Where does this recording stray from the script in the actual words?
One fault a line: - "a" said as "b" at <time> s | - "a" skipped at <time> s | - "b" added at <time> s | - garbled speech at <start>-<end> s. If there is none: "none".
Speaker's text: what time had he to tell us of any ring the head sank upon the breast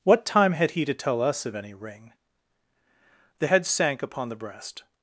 none